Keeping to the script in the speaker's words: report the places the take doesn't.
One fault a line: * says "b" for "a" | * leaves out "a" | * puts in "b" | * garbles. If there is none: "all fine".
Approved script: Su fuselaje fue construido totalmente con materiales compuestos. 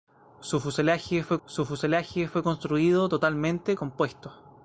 * puts in "su fuselaje fue"
* leaves out "con materiales"